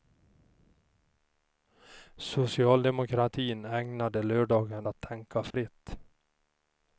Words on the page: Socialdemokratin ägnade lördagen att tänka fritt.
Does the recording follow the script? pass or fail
pass